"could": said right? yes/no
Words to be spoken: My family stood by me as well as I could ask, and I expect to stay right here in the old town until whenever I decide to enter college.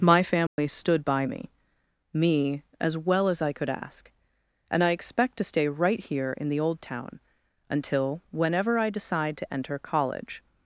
yes